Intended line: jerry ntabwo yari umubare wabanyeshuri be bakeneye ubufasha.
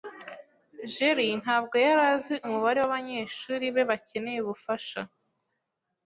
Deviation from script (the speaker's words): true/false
true